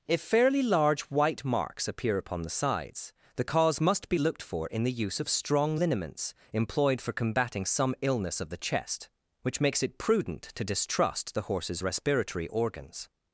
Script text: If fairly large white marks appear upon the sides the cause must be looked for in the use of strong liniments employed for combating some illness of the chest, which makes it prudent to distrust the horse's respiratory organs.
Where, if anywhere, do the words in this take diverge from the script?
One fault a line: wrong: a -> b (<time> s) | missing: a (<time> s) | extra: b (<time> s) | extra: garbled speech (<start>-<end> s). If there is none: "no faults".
no faults